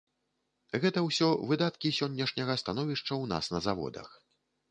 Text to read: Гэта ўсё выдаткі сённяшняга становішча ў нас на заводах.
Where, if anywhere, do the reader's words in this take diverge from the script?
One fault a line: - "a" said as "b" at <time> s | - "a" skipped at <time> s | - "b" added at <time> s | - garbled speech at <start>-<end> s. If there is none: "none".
none